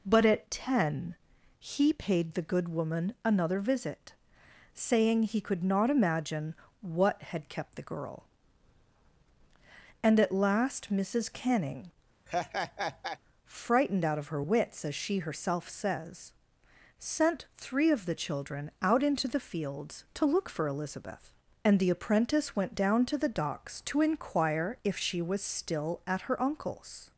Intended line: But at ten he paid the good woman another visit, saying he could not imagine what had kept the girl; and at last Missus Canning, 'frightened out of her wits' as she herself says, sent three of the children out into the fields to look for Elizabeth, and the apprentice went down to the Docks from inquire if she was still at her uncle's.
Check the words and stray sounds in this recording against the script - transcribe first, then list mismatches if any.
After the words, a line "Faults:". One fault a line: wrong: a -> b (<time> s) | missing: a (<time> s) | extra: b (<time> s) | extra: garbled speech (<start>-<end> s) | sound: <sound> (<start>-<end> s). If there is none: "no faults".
But at ten he paid the good woman another visit, saying he could not imagine what had kept the girl; and at last Missus Canning, 'frightened out of her wits' as she herself says, sent three of the children out into the fields to look for Elizabeth, and the apprentice went down to the Docks to inquire if she was still at her uncle's.
Faults:
sound: laugh (12.3-13.2 s)
wrong: from -> to (23.9 s)